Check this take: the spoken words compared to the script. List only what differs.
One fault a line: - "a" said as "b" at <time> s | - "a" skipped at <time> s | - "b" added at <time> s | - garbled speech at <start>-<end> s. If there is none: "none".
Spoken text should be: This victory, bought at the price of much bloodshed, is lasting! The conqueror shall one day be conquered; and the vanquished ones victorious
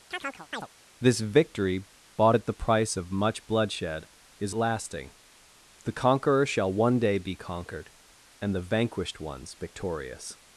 none